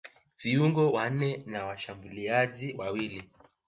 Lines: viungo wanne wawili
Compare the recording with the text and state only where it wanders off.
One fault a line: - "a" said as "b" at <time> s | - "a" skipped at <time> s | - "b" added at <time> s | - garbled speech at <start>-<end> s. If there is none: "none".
- "na washambuliaji" added at 1.4 s